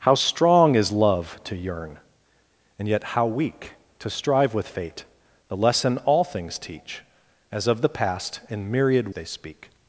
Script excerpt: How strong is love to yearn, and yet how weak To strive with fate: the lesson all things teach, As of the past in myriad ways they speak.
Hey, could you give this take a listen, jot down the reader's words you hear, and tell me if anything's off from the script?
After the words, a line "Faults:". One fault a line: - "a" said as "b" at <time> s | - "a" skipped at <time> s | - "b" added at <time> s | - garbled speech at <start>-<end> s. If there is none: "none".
How strong is love to yearn, and yet how weak To strive with fate: the lesson all things teach, As of the past in myriad they speak.
Faults:
- "ways" skipped at 9.1 s